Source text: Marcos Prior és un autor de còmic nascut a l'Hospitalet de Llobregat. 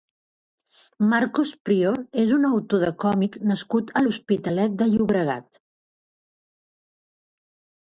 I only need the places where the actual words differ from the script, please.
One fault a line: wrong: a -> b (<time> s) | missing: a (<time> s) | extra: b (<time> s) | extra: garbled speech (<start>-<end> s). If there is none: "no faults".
no faults